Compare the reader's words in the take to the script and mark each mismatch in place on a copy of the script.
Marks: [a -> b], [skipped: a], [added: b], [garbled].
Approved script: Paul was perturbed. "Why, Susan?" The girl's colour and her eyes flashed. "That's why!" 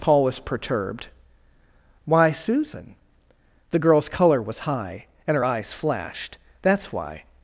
Paul was perturbed. "Why, Susan?" The girl's colour [added: was high] and her eyes flashed. "That's why!"